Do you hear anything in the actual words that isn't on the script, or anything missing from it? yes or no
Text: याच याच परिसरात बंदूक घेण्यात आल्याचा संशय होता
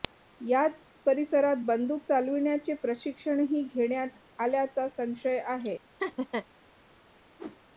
yes